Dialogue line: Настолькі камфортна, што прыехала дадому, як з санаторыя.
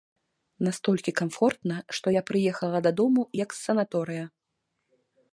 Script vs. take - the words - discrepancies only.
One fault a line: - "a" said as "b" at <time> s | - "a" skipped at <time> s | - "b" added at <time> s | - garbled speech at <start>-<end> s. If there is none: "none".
- "я" added at 2.1 s